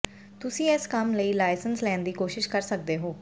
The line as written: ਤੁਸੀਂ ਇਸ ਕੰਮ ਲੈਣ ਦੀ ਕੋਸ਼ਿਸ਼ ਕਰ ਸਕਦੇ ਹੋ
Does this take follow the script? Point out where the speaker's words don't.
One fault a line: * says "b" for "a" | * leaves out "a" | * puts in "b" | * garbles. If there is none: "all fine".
* puts in "ਲਈ ਲਾਇਸੈਂਸ"